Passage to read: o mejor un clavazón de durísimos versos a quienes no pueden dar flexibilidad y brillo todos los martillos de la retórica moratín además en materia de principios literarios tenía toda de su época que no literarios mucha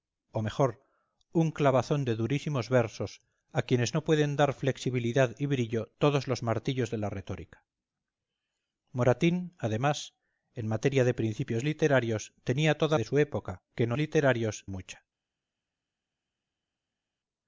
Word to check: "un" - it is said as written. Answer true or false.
true